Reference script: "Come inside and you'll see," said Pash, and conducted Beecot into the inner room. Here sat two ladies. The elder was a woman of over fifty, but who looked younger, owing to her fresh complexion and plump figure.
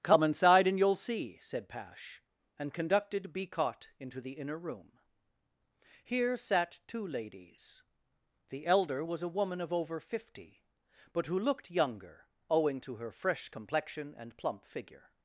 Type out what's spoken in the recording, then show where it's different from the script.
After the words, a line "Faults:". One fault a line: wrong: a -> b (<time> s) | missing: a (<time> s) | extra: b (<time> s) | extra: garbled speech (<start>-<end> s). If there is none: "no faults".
"Come inside and you'll see," said Pash, and conducted Beecot into the inner room. Here sat two ladies. The elder was a woman of over fifty, but who looked younger, owing to her fresh complexion and plump figure.
Faults:
no faults